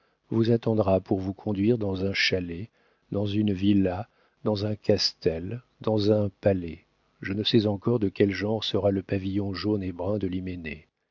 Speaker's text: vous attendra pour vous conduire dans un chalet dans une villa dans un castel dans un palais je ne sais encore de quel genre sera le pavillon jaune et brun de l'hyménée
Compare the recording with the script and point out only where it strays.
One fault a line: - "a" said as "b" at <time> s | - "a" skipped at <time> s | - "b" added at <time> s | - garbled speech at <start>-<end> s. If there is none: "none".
none